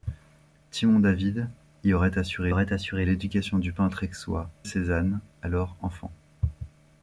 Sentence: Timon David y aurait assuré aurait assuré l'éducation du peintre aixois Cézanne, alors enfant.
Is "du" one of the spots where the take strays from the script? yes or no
no